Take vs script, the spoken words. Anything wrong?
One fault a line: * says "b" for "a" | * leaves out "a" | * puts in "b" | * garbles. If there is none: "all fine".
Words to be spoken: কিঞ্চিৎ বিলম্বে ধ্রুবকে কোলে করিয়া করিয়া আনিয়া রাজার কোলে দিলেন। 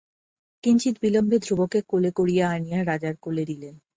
* leaves out "করিয়া"